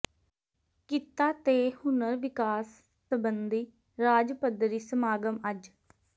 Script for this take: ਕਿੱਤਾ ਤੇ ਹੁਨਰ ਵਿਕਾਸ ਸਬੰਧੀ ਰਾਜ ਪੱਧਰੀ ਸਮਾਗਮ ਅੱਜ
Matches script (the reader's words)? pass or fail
pass